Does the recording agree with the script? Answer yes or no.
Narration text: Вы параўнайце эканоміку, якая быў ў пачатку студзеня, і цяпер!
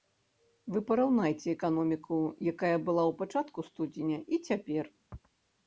no